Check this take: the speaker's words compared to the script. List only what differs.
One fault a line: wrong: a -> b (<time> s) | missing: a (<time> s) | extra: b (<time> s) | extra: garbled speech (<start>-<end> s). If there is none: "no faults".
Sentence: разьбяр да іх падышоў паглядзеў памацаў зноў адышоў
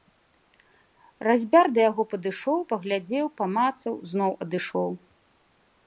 wrong: іх -> яго (1.9 s)